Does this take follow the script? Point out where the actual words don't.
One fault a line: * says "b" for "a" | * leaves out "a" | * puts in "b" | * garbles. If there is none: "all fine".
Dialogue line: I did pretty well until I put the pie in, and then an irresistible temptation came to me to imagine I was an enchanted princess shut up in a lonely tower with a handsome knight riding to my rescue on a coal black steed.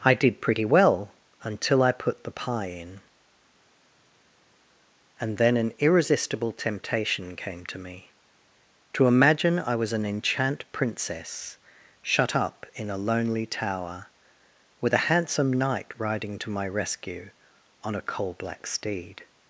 * says "enchant" for "enchanted"